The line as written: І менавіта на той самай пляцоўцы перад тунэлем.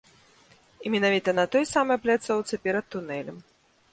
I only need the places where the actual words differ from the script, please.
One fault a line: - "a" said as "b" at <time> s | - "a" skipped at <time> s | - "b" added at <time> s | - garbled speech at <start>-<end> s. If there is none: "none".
none